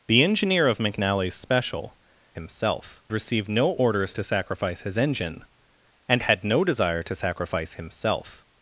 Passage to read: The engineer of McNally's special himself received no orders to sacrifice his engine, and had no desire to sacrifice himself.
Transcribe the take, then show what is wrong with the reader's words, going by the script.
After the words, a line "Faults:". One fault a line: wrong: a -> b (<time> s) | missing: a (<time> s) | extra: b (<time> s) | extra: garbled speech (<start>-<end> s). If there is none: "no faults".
The engineer of McNally's special himself received no orders to sacrifice his engine, and had no desire to sacrifice himself.
Faults:
no faults